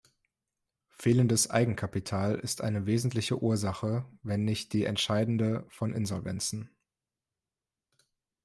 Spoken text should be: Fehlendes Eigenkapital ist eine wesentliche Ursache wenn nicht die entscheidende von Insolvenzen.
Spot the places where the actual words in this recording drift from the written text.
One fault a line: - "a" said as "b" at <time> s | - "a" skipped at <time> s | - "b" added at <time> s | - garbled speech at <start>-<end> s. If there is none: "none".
none